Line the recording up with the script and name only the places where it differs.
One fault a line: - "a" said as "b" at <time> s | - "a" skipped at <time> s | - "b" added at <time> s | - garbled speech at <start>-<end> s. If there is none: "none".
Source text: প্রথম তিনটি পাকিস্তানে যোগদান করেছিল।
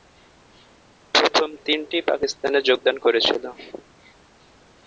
none